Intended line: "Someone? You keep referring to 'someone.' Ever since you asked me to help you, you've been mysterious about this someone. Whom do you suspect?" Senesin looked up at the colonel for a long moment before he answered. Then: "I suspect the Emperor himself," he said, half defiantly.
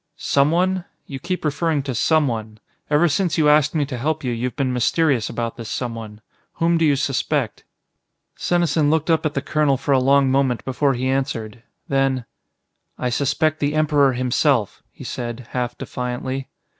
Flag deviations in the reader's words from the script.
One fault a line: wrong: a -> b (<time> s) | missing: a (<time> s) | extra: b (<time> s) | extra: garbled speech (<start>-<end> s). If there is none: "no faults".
no faults